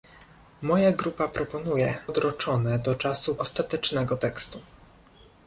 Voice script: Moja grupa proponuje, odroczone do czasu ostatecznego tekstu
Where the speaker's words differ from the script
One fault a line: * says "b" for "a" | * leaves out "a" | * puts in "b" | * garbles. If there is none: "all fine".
all fine